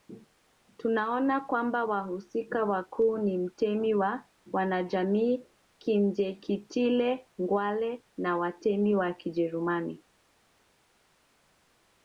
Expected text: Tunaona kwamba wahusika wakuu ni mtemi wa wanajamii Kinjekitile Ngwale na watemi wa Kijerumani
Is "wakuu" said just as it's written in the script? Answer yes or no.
yes